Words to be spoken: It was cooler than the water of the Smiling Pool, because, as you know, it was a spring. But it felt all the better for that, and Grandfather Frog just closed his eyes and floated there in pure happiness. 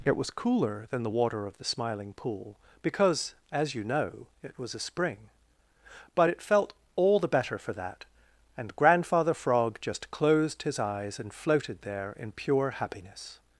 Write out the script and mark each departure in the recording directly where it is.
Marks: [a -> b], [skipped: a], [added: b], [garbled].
It was cooler than the water of the Smiling Pool, because, as you know, it was a spring. But it felt all the better for that, and Grandfather Frog just closed his eyes and floated there in pure happiness.